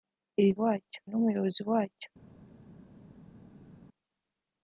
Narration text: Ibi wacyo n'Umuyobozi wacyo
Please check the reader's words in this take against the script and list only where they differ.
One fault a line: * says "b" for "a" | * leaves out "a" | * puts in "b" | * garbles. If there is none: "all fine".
all fine